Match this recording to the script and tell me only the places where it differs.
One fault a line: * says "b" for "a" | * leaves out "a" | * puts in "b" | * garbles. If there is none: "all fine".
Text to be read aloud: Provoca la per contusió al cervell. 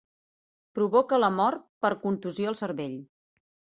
* puts in "mort"